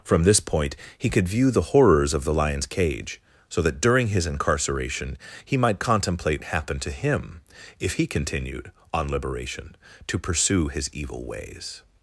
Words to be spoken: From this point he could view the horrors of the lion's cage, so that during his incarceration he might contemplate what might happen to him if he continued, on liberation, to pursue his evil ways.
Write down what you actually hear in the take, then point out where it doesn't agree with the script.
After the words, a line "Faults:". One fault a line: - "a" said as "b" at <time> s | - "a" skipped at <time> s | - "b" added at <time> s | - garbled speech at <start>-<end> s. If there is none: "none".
From this point he could view the horrors of the lion's cage, so that during his incarceration he might contemplate happen to him if he continued, on liberation, to pursue his evil ways.
Faults:
- "what might" skipped at 6.4 s